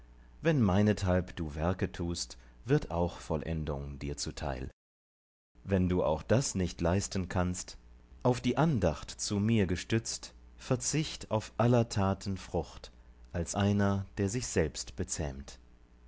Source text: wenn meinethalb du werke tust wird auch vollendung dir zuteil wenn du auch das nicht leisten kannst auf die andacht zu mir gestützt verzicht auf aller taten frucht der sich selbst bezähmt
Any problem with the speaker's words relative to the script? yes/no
yes